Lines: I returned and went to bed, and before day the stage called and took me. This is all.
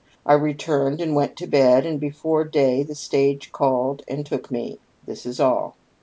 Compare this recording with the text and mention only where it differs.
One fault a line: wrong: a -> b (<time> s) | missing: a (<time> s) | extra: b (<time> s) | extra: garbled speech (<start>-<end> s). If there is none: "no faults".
no faults